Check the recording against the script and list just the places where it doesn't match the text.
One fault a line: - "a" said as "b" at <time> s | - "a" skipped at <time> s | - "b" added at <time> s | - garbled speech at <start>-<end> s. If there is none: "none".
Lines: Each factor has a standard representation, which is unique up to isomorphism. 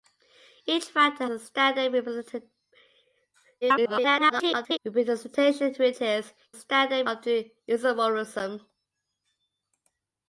- "has" skipped at 1.2 s
- garbled speech at 3.6-4.8 s
- "unique" said as "standard" at 6.5 s